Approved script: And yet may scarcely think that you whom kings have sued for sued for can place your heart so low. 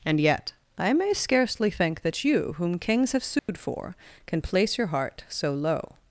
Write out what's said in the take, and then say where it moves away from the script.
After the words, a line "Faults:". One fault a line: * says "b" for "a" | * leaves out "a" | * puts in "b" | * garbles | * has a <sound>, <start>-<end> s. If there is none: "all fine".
And yet I may scarcely think that you whom kings have sued for can place your heart so low.
Faults:
* puts in "I"
* has a dropout, 3.4-3.5 s
* leaves out "sued for"